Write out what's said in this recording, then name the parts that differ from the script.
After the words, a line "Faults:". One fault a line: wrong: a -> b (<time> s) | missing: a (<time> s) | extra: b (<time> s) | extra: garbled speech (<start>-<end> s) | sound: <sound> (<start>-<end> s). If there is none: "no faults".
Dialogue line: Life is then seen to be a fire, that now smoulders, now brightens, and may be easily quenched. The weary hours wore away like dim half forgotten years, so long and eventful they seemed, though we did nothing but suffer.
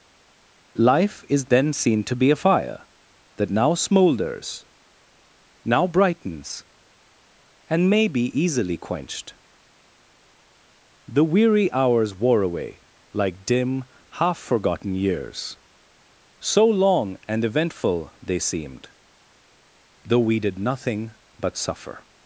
Life is then seen to be a fire, that now smoulders, now brightens, and may be easily quenched. The weary hours wore away like dim half forgotten years, so long and eventful they seemed, though we did nothing but suffer.
Faults:
no faults